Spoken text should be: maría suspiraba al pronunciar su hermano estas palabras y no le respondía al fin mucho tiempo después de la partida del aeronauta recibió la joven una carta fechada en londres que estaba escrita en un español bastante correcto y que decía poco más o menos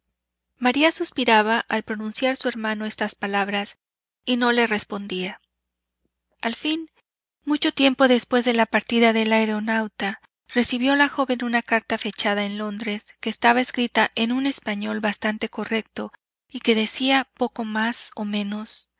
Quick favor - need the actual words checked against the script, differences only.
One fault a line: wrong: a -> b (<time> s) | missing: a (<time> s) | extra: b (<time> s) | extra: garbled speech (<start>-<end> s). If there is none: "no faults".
no faults